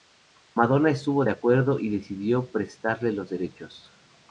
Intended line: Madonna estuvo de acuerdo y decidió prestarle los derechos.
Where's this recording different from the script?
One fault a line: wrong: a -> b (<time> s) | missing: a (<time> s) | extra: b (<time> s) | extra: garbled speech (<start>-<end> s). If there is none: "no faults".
no faults